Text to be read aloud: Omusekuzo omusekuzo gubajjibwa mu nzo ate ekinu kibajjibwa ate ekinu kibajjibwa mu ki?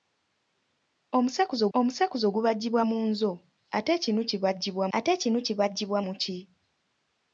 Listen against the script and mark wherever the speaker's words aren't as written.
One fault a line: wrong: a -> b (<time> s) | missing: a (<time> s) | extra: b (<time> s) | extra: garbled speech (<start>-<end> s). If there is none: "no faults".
no faults